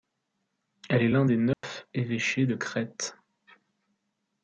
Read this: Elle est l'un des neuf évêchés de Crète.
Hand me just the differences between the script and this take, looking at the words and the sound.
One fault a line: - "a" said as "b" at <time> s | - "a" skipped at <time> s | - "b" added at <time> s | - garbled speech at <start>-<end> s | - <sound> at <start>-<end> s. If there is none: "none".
- dropout at 1.5-1.6 s